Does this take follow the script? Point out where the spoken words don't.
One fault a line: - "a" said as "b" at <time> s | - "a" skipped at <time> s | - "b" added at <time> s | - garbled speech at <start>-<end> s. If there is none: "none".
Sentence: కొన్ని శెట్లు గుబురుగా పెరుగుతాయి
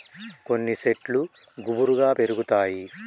none